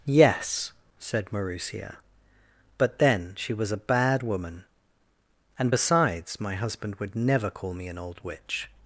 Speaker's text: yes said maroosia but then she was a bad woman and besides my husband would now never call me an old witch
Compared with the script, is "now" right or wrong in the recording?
wrong